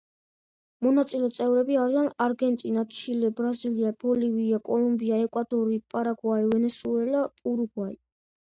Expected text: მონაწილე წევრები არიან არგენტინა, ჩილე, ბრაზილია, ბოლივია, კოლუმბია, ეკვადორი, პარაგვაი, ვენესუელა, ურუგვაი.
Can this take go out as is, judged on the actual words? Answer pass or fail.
pass